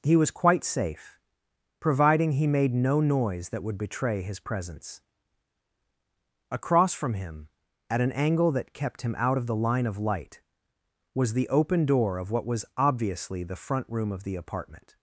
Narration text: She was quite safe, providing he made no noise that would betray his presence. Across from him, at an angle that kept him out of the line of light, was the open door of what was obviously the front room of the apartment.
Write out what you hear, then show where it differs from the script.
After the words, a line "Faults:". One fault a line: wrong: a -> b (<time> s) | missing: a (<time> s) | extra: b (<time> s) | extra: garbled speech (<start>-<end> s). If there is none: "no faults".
He was quite safe, providing he made no noise that would betray his presence. Across from him, at an angle that kept him out of the line of light, was the open door of what was obviously the front room of the apartment.
Faults:
wrong: She -> He (0.0 s)